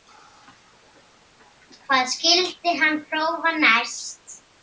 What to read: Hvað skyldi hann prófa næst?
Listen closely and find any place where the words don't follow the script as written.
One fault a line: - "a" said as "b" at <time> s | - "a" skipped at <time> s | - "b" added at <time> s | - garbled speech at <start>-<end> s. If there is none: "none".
none